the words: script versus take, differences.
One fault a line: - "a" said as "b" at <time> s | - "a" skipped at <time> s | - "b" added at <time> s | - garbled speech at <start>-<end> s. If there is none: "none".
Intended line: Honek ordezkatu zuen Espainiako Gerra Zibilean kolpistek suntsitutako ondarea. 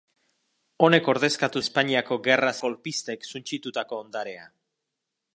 - "zuen" skipped at 1.6 s
- "Zibilean" skipped at 2.5 s